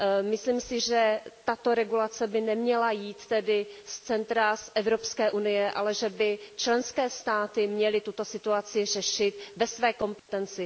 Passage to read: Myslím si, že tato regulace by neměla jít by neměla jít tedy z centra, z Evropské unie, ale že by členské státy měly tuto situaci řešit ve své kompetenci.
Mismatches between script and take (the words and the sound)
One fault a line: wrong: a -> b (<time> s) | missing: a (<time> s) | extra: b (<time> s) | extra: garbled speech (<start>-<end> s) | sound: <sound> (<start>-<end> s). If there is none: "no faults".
missing: by neměla jít (3.3 s)
sound: dropout (10.2-10.3 s)